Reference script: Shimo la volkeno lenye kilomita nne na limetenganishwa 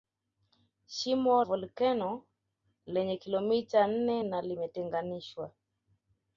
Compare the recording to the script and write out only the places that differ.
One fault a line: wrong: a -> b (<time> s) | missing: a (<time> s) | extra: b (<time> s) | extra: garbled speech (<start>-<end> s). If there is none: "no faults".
missing: la (1.4 s)